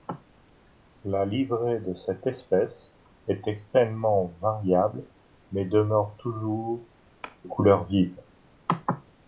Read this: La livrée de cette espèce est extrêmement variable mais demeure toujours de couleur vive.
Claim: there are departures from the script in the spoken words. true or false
true